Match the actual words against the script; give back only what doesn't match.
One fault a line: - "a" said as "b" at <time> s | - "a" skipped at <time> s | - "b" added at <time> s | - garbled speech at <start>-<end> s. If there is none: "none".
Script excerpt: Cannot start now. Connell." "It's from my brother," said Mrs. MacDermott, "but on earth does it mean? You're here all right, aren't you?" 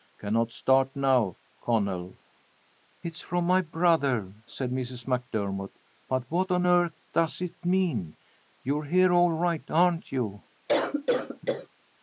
- "what" added at 6.3 s